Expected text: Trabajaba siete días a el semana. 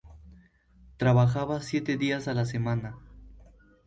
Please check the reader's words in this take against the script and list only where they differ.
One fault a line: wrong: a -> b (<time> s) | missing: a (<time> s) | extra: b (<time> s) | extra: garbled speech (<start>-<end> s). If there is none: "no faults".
wrong: el -> la (2.3 s)